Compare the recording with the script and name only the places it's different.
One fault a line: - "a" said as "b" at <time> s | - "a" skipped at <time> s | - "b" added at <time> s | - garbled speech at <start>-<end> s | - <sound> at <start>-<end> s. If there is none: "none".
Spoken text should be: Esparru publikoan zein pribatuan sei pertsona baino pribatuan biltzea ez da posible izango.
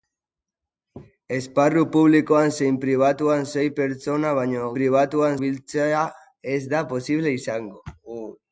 none